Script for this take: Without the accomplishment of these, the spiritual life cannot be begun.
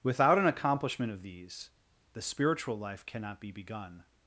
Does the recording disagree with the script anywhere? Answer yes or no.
yes